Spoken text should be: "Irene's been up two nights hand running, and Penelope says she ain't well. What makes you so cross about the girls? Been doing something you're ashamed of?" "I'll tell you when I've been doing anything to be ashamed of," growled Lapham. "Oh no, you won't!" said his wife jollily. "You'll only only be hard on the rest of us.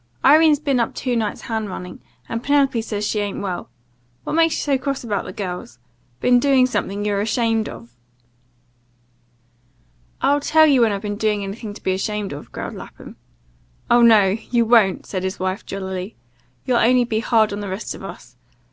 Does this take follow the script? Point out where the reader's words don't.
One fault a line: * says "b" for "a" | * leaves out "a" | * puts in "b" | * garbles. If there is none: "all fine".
* leaves out "only"